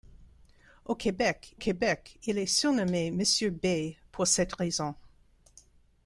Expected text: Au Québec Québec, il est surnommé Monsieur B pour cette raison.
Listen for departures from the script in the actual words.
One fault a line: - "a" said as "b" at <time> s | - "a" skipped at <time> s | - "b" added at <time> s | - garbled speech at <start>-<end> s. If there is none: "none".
none